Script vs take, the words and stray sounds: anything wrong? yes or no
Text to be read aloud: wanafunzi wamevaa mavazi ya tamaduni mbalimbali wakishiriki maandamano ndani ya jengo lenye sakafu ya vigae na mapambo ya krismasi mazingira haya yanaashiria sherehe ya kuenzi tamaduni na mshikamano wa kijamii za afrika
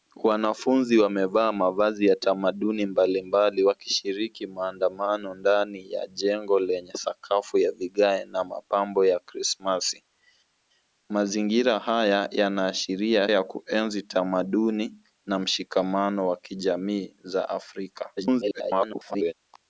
yes